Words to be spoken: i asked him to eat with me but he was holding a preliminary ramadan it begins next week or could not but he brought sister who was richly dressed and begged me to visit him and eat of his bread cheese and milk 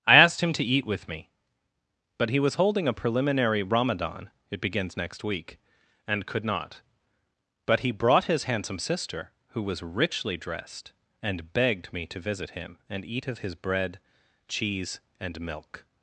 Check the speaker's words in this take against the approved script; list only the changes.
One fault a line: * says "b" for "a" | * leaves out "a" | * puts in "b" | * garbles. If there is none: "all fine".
* says "and" for "or"
* puts in "his handsome"